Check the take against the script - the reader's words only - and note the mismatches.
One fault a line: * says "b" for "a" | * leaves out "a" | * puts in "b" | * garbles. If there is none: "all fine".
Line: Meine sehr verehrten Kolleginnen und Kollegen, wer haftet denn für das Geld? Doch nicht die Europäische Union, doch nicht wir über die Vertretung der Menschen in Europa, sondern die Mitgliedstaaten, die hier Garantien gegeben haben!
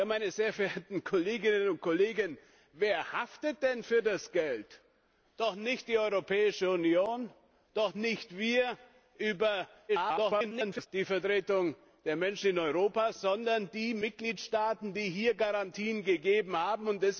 * garbles